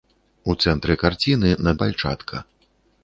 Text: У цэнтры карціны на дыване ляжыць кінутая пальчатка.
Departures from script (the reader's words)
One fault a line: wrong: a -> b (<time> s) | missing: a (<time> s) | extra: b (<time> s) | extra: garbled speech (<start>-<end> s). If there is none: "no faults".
missing: дыване ляжыць кінутая (1.8 s)